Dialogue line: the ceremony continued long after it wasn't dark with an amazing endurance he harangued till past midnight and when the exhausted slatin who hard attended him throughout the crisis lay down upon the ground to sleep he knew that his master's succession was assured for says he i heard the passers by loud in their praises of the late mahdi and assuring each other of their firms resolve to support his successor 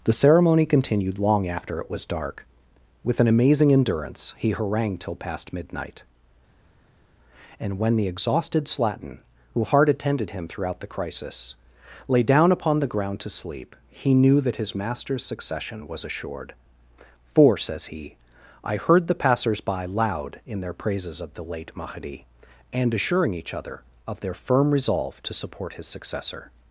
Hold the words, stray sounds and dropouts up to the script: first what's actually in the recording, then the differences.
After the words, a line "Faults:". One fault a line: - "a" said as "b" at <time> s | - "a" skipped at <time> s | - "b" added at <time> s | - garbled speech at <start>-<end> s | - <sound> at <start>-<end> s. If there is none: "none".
the ceremony continued long after it was dark with an amazing endurance he harangued till past midnight and when the exhausted slatin who hard attended him throughout the crisis lay down upon the ground to sleep he knew that his master's succession was assured for says he i heard the passers by loud in their praises of the late mahdi and assuring each other of their firm resolve to support his successor
Faults:
- "wasn't" said as "was" at 1.9 s
- "firms" said as "firm" at 24.3 s